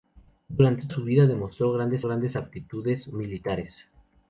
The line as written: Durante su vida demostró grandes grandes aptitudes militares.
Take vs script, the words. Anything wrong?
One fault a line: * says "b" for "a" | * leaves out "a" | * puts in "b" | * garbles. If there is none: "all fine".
all fine